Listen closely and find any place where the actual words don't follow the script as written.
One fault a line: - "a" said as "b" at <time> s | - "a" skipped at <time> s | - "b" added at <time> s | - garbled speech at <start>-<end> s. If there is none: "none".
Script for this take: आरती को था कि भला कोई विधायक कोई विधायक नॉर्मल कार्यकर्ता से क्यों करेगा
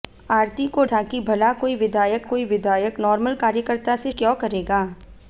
none